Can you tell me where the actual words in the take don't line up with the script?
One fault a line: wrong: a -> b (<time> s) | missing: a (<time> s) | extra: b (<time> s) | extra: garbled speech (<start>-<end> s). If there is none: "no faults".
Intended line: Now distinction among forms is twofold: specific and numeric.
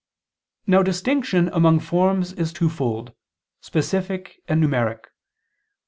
no faults